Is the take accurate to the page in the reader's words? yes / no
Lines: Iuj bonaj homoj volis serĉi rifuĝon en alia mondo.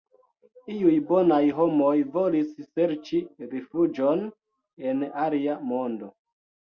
yes